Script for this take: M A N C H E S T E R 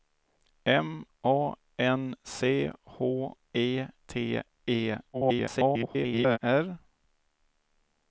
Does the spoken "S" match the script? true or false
false